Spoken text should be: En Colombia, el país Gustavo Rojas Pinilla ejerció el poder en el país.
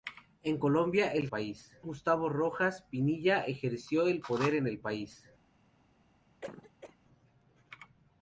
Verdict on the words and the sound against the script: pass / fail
fail